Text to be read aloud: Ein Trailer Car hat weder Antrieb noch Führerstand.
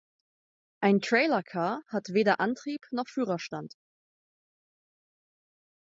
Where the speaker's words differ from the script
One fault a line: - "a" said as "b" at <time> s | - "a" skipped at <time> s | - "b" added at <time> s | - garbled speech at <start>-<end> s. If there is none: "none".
none